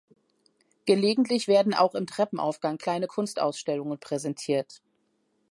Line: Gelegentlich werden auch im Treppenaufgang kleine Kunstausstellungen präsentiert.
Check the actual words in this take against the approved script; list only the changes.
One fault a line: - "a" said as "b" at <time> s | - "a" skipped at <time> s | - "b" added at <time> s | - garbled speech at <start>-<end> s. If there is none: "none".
none